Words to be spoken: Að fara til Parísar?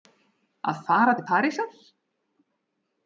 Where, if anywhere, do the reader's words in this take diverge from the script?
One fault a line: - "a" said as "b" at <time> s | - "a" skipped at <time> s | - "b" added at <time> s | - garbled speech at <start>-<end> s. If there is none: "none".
none